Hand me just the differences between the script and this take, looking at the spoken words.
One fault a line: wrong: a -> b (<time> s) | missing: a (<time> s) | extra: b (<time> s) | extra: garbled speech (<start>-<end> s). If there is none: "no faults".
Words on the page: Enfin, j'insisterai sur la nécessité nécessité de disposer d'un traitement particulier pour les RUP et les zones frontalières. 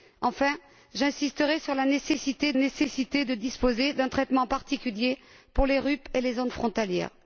no faults